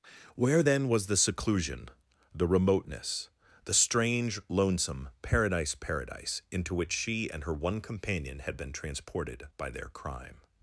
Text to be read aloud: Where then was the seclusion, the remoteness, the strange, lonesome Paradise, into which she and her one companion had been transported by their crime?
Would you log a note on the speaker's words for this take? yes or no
yes